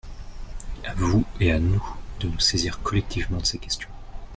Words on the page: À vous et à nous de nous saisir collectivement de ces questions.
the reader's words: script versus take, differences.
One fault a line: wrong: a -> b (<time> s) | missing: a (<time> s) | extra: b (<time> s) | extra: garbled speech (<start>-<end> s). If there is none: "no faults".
no faults